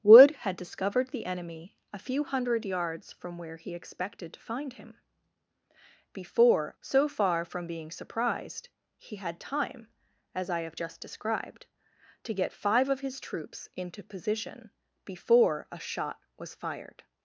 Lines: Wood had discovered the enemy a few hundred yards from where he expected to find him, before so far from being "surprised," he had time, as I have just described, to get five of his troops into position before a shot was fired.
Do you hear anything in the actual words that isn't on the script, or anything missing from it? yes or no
no